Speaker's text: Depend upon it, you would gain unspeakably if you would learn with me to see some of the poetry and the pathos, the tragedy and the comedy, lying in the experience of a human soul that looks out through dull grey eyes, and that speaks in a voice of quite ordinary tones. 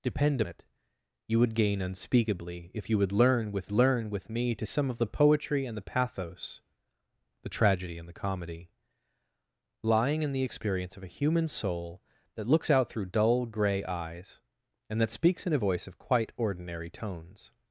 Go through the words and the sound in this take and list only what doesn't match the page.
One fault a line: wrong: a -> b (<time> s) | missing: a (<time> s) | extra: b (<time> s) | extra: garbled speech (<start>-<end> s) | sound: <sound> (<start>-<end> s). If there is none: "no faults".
missing: upon (0.4 s)
extra: learn with (3.7 s)
missing: see (4.7 s)